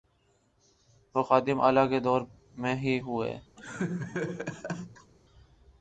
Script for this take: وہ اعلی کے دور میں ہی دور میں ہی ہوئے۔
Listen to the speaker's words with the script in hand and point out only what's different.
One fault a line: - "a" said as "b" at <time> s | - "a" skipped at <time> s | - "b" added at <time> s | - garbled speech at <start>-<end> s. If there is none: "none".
- "خادم" added at 1.2 s
- "دور میں ہی" skipped at 3.0 s